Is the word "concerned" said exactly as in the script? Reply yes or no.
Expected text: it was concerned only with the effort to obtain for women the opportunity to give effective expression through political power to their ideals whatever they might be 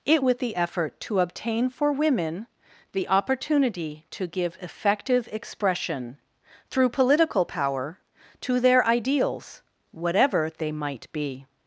no